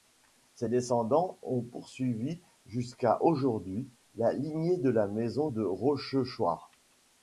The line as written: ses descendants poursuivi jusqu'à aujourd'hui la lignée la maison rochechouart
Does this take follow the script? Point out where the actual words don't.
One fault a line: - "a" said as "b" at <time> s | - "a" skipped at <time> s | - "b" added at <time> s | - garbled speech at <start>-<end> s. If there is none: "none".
- "ont" added at 1.4 s
- "de" added at 4.8 s
- "de" added at 5.5 s